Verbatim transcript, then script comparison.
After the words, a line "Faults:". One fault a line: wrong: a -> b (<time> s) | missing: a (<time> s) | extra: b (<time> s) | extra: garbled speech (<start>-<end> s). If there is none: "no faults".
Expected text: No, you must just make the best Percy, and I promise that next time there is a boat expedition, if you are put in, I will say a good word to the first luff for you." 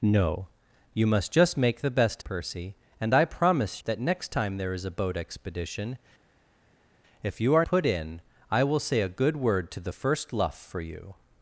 No, you must just make the best Percy, and I promise that next time there is a boat expedition, if you are put in, I will say a good word to the first luff for you."
Faults:
no faults